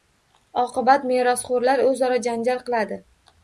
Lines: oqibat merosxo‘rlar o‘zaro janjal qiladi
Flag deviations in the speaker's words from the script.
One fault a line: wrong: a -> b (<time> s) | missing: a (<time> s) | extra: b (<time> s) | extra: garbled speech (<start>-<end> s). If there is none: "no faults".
no faults